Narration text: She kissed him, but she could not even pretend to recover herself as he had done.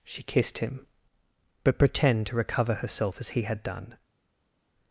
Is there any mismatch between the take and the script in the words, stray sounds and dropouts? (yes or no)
yes